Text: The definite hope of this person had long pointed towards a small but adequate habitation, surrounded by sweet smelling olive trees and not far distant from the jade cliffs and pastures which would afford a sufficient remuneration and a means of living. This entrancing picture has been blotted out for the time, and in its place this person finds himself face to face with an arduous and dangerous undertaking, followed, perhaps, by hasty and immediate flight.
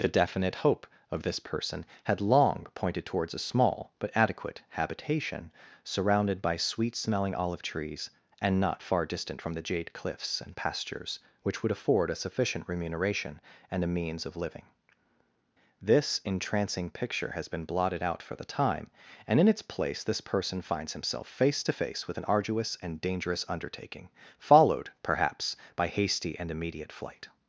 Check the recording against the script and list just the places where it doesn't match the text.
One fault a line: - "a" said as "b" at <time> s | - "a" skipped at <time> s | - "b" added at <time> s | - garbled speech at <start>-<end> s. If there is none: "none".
none